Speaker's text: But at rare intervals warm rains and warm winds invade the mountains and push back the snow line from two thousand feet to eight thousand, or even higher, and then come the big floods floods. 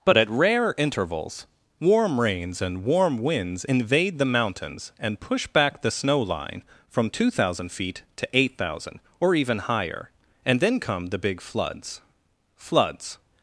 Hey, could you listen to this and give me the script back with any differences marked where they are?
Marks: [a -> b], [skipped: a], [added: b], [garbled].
But at rare intervals warm rains and warm winds invade the mountains and push back the snow line from two thousand feet to eight thousand, or even higher, and then come the big floods floods.